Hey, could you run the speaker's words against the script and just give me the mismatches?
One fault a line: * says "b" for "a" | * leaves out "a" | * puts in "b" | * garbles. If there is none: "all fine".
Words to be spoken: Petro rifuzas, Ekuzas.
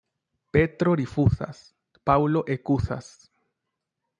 * puts in "Paŭlo"